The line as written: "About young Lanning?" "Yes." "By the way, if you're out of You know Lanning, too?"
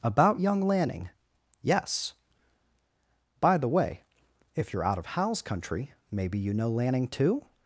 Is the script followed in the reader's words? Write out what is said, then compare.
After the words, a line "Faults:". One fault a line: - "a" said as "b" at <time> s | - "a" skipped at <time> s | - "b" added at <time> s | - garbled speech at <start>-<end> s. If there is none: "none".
"About young Lanning?" "Yes." "By the way, if you're out of Hal's country, maybe you know Lanning, too?"
Faults:
- "Hal's country maybe" added at 5.1 s